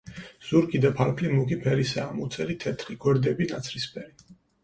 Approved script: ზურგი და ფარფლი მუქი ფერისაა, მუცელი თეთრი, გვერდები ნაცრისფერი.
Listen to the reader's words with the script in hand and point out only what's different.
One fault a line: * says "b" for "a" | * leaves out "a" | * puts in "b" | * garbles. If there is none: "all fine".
all fine